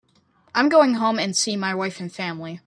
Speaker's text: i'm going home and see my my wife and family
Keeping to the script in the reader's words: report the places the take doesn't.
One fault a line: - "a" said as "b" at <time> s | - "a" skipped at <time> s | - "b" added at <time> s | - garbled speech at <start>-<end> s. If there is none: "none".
- "my" skipped at 1.8 s